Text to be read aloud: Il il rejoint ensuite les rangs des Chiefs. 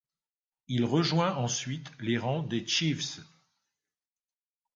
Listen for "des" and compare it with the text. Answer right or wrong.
right